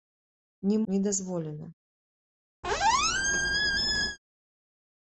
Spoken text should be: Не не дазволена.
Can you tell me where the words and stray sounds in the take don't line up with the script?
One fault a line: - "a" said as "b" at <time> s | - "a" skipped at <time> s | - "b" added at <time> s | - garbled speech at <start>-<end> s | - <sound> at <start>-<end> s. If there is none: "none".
- squeak at 2.6-4.2 s